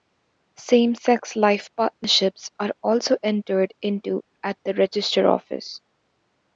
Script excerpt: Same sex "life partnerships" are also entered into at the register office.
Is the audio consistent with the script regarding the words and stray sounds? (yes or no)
yes